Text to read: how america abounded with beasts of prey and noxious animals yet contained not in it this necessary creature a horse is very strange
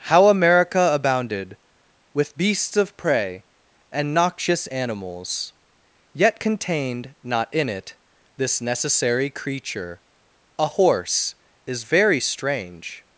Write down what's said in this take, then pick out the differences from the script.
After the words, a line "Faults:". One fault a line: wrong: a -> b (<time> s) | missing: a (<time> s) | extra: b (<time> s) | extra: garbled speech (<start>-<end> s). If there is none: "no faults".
how america abounded with beasts of prey and noxious animals yet contained not in it this necessary creature a horse is very strange
Faults:
no faults